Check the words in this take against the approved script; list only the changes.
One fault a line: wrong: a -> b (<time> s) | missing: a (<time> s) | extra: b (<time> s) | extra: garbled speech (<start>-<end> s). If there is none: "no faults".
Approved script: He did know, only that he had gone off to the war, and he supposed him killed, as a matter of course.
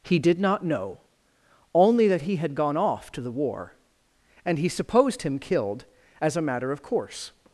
extra: not (0.4 s)